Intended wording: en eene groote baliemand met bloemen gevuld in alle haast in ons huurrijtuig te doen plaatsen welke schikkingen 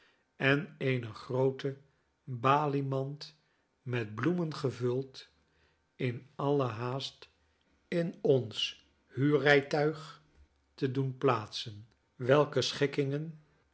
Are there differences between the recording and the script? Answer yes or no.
no